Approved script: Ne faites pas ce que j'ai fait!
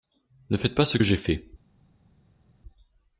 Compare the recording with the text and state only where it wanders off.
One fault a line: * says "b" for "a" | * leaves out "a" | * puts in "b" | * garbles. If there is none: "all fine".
all fine